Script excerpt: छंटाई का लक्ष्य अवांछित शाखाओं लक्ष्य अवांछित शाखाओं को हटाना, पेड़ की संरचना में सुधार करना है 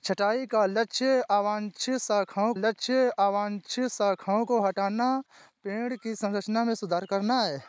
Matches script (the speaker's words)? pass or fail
pass